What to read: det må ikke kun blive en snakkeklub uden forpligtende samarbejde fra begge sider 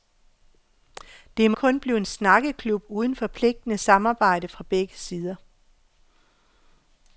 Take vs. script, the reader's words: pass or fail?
fail